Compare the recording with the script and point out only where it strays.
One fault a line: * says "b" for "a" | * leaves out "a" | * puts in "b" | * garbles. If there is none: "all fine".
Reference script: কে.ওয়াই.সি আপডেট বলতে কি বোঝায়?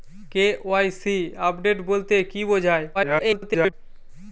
* garbles